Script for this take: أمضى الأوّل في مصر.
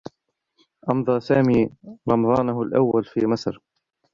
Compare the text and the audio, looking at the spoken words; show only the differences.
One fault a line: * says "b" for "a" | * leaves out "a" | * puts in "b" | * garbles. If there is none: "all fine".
* puts in "سامي رمضانه"